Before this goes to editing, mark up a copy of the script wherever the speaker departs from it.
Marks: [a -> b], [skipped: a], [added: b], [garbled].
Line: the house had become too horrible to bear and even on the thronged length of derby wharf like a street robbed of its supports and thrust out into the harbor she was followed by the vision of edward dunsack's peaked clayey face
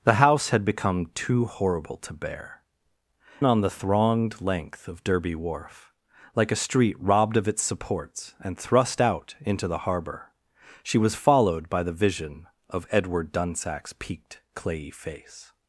the house had become too horrible to bear [skipped: and even] on the thronged length of derby wharf like a street robbed of its supports and thrust out into the harbor she was followed by the vision of edward dunsack's peaked clayey face